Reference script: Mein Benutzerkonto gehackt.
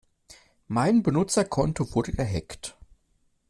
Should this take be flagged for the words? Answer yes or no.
yes